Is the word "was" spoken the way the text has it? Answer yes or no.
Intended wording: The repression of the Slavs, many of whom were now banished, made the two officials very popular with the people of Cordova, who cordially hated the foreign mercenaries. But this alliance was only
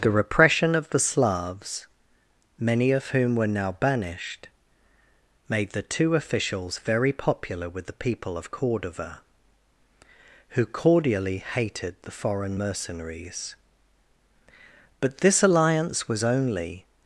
yes